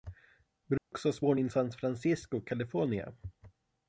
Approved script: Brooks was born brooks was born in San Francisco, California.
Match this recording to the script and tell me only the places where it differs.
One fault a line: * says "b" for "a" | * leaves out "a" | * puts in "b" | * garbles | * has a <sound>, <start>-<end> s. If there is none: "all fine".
* has a dropout, 0.8-0.9 s
* leaves out "brooks was born"